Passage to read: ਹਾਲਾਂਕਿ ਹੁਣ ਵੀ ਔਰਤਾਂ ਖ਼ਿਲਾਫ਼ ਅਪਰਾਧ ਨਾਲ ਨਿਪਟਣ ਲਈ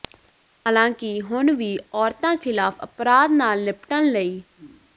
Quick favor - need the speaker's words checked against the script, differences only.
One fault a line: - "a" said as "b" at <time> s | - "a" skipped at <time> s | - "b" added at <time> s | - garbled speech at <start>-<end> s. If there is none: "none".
none